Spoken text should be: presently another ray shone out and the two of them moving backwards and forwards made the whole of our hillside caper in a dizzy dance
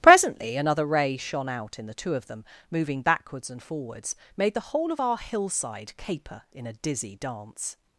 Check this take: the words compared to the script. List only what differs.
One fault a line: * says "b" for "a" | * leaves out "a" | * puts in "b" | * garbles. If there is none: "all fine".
* says "in" for "and"